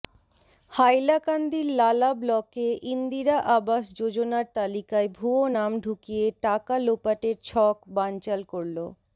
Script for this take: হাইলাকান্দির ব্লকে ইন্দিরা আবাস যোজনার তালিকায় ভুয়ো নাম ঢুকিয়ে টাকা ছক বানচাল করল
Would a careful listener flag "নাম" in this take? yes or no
no